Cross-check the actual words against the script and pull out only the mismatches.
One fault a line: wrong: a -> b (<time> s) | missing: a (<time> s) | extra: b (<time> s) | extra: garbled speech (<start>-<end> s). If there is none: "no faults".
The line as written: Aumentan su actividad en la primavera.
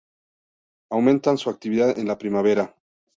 no faults